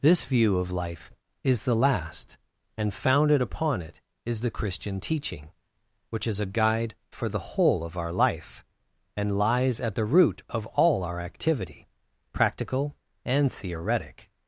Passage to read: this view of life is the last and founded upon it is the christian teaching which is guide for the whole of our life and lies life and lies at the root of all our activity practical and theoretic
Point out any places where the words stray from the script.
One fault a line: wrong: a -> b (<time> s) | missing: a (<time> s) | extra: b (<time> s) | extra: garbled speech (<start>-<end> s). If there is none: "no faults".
extra: a (6.4 s)
missing: life and lies (9.8 s)